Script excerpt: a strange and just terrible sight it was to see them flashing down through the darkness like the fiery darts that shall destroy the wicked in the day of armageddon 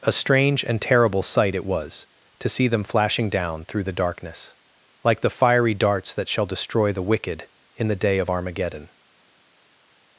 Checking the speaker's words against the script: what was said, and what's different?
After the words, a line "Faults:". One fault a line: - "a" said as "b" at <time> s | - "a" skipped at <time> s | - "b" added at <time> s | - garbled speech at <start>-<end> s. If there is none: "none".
a strange and terrible sight it was to see them flashing down through the darkness like the fiery darts that shall destroy the wicked in the day of armageddon
Faults:
- "just" skipped at 0.8 s